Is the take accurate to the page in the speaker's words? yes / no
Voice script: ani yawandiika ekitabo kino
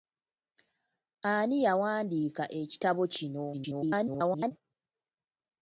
no